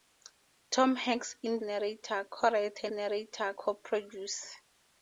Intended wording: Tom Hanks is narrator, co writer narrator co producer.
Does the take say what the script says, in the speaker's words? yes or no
yes